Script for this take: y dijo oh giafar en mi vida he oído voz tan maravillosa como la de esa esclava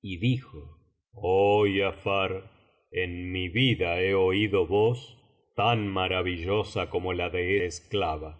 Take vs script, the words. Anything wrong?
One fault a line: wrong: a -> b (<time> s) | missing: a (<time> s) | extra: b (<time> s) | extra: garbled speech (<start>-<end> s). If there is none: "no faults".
missing: esa (7.6 s)